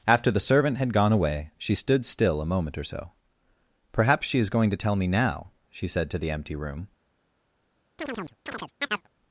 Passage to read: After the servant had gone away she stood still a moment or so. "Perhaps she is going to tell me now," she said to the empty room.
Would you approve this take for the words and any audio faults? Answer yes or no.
no